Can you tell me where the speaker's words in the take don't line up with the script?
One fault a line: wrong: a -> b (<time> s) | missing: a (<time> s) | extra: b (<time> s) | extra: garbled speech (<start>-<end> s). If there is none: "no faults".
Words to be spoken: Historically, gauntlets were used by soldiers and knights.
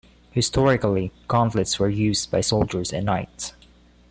no faults